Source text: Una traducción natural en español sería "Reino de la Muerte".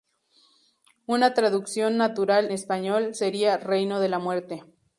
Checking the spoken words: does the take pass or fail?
fail